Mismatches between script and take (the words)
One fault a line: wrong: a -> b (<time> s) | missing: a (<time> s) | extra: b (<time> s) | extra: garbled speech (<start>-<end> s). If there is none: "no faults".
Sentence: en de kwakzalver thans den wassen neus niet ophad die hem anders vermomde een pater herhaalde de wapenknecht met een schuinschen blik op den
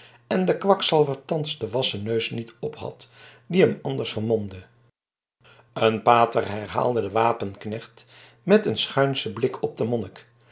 no faults